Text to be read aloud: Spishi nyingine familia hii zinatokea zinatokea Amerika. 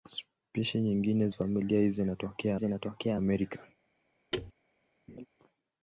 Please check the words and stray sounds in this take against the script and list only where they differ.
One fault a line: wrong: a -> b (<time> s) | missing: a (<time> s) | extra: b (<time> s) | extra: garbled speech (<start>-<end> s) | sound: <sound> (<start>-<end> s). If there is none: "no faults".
sound: thud (4.3-4.5 s)
sound: laugh (5.1-5.3 s)